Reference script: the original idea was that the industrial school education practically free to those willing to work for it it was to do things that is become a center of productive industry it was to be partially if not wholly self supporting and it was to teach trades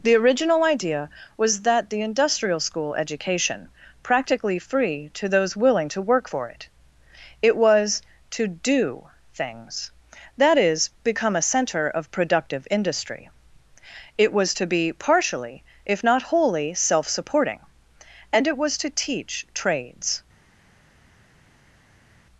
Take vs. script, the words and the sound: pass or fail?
pass